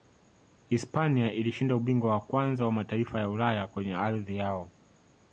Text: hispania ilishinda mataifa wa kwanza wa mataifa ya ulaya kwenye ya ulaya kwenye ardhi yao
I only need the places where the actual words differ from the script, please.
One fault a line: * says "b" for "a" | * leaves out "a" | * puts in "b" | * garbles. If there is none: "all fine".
* says "ubingwa" for "mataifa"
* leaves out "ya ulaya kwenye"